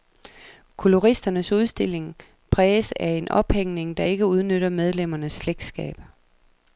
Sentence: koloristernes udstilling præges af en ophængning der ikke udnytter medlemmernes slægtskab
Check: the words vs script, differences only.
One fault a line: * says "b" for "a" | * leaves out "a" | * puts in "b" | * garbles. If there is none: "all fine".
all fine